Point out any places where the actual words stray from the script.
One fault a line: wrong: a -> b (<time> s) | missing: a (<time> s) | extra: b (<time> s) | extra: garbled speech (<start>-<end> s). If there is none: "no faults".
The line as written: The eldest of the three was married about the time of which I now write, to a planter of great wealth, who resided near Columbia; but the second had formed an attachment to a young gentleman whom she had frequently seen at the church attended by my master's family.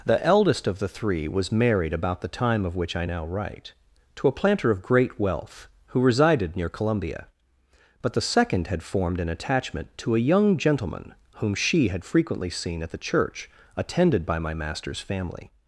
no faults